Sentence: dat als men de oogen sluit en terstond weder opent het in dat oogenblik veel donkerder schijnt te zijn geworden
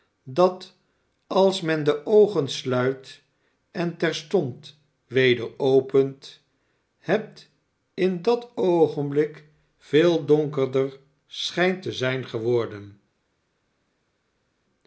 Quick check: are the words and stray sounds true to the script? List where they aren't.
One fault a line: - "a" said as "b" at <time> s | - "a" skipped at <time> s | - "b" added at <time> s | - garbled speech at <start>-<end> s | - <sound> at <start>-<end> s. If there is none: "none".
none